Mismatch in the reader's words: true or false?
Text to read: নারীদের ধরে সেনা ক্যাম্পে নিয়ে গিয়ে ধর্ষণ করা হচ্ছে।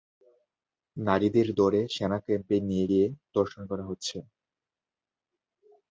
false